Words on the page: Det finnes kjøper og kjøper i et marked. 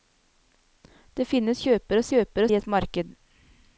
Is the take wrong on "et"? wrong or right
right